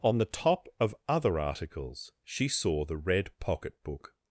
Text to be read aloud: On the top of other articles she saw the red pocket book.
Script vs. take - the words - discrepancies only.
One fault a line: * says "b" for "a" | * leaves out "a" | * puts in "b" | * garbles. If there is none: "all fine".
all fine